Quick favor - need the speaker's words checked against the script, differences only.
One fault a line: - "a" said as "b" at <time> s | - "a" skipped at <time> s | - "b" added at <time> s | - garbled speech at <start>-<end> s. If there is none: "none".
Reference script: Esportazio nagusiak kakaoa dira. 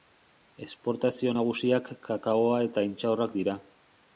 - "eta intxaurrak" added at 2.7 s